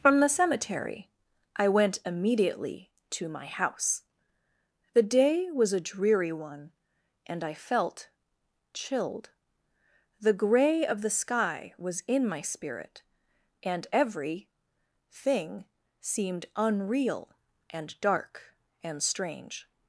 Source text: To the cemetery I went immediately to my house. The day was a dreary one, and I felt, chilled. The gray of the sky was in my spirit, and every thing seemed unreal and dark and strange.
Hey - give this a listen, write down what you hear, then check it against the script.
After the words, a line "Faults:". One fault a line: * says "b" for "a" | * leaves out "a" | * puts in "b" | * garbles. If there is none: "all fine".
From the cemetery I went immediately to my house. The day was a dreary one, and I felt, chilled. The gray of the sky was in my spirit, and every thing seemed unreal and dark and strange.
Faults:
* says "From" for "To"